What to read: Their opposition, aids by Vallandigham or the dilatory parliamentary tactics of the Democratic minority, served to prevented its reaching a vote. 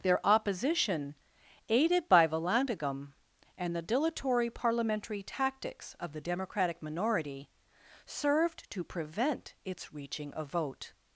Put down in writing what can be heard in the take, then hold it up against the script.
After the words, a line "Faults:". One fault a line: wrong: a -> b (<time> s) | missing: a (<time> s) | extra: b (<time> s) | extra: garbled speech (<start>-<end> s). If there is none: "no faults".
Their opposition, aided by Vallandigham and the dilatory parliamentary tactics of the Democratic minority, served to prevent its reaching a vote.
Faults:
wrong: aids -> aided (1.7 s)
wrong: or -> and (3.6 s)
wrong: prevented -> prevent (8.8 s)